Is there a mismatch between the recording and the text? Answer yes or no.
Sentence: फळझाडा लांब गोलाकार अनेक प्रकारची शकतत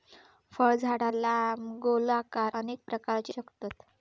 no